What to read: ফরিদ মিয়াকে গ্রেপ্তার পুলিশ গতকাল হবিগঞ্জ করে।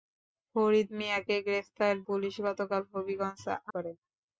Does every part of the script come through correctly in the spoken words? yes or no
yes